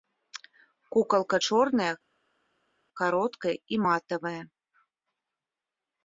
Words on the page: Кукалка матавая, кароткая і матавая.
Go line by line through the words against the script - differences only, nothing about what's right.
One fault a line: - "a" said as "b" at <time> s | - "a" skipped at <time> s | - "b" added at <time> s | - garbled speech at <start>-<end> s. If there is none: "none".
- "матавая" said as "чорная" at 1.5 s